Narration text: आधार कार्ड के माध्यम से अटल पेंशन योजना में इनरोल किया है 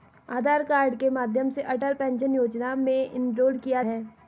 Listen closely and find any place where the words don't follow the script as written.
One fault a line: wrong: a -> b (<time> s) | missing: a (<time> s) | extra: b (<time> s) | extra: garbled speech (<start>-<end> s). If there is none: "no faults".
no faults